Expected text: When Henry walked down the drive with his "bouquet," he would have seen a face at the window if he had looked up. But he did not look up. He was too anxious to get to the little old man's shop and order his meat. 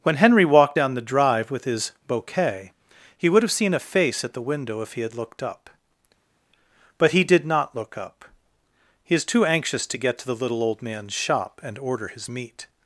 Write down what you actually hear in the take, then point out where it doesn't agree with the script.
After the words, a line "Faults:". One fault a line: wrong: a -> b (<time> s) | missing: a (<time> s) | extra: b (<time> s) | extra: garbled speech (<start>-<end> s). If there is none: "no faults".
When Henry walked down the drive with his "bouquet," he would have seen a face at the window if he had looked up. But he did not look up. He is too anxious to get to the little old man's shop and order his meat.
Faults:
wrong: was -> is (9.1 s)